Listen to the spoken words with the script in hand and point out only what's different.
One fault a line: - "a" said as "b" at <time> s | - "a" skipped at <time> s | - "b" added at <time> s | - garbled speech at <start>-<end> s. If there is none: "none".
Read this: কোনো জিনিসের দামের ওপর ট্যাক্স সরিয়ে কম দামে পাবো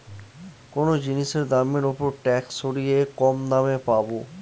none